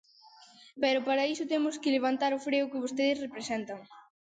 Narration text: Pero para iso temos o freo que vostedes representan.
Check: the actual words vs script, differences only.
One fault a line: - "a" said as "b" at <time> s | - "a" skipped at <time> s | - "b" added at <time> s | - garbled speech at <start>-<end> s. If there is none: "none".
- "que levantar" added at 1.8 s